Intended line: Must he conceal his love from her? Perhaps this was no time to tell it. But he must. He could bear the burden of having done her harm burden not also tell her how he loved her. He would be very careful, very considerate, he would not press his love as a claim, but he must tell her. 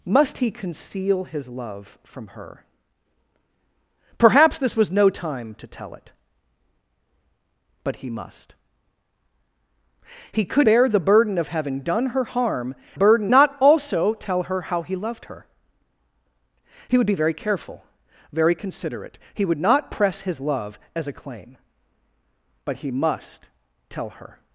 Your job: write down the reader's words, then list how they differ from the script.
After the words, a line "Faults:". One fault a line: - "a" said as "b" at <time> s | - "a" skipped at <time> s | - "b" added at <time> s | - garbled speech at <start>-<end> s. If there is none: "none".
Must he conceal his love from her? Perhaps this was no time to tell it. But he must. He could bear the burden of having done her harm burden not also tell her how he loved her. He would be very careful, very considerate, he would not press his love as a claim, but he must tell her.
Faults:
none